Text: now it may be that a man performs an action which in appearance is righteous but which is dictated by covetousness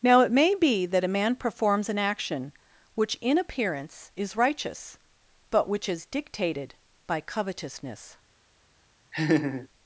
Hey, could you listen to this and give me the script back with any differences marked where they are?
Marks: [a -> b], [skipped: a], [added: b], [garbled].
now it may be that a man performs an action which in appearance is righteous but which is dictated by covetousness